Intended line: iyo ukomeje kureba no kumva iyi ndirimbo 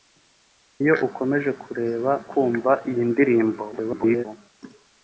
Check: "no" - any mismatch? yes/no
yes